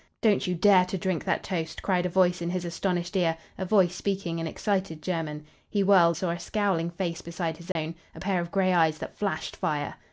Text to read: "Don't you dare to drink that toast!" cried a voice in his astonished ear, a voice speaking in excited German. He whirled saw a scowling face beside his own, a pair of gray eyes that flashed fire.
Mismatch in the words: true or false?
false